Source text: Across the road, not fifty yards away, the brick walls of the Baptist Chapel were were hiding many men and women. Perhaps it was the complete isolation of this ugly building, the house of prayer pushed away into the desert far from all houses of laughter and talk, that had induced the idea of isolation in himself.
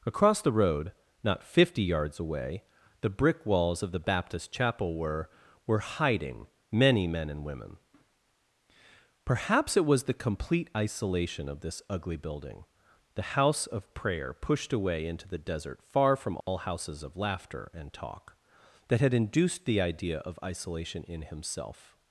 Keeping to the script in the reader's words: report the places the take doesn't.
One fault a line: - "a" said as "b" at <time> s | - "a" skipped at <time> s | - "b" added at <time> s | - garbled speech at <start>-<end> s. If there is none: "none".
none